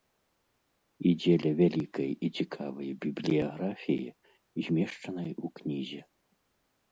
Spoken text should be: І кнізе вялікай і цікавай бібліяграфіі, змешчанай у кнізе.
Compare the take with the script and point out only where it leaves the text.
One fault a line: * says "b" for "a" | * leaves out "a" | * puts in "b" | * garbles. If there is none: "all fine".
* says "дзеля" for "кнізе"